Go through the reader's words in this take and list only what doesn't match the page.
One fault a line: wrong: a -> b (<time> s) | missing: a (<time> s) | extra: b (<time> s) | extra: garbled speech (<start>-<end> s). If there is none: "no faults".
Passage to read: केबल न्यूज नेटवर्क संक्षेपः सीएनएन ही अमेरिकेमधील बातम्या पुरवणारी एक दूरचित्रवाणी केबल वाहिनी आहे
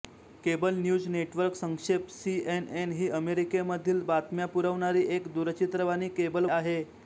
missing: वाहिनी (6.5 s)